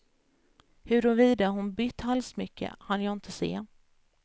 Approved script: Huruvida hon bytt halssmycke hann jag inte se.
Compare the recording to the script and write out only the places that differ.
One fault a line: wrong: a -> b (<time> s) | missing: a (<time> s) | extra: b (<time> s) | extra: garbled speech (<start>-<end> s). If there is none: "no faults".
no faults